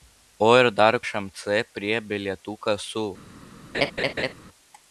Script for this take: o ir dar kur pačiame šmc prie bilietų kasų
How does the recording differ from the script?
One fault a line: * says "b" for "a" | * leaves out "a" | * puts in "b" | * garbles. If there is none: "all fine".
* leaves out "kur pačiame"